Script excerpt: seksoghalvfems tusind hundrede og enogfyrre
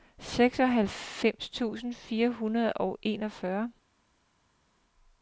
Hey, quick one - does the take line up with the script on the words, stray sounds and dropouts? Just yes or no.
no